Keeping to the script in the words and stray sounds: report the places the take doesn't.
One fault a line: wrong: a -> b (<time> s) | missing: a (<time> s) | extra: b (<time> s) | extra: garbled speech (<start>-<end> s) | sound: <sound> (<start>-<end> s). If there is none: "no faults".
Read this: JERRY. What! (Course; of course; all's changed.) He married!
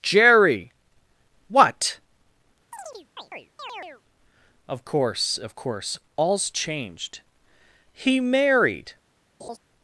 sound: chirp (2.7-4.0 s)
extra: Of (4.7 s)
sound: laugh (9.4-9.6 s)